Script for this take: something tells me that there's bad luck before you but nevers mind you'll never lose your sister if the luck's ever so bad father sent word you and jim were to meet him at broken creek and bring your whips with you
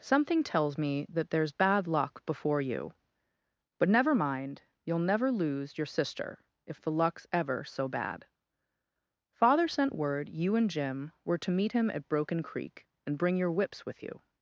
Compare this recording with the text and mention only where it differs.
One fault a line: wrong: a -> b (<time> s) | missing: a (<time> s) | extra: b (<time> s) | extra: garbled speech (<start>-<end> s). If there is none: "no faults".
wrong: nevers -> never (3.9 s)